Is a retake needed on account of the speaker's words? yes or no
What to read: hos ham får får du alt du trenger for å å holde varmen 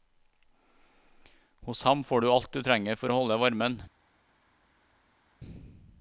yes